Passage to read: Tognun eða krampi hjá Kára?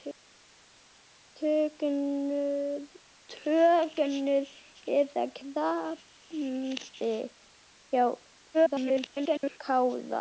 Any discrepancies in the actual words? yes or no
yes